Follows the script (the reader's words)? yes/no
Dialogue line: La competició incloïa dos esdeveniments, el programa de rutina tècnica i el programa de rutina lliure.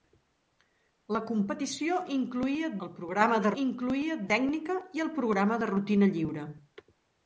no